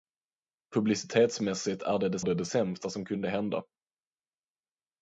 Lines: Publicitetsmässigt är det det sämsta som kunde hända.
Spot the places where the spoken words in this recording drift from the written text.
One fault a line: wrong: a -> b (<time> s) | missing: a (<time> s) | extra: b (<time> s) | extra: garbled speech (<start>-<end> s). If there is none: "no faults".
extra: det det (2.2 s)